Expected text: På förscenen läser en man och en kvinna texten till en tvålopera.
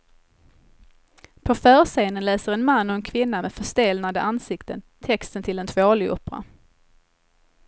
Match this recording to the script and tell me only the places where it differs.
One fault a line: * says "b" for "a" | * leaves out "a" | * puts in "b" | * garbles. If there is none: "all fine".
* puts in "med förstelnade ansikten"